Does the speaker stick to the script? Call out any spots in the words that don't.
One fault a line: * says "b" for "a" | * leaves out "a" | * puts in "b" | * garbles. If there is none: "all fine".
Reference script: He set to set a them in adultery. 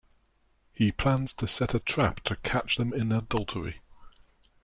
* says "plans" for "set"
* puts in "trap to catch"